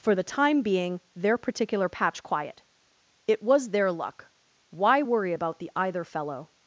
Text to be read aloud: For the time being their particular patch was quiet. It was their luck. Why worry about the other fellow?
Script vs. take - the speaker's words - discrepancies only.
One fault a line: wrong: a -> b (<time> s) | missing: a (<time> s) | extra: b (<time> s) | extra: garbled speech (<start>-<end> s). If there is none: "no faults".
missing: was (2.2 s)
wrong: other -> either (5.8 s)